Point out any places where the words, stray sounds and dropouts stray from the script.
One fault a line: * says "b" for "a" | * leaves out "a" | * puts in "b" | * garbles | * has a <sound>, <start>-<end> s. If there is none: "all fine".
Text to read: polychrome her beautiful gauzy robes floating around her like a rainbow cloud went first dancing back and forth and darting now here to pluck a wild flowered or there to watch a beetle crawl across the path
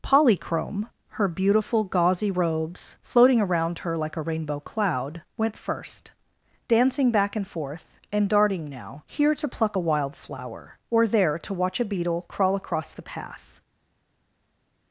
* says "flower" for "flowered"